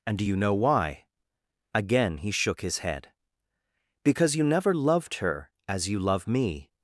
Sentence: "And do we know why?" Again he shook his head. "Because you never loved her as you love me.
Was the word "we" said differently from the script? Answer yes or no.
yes